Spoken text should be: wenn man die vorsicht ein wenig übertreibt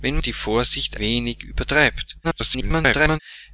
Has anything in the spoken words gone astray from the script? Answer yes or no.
yes